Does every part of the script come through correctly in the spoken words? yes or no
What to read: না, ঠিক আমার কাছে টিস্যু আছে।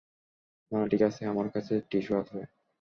no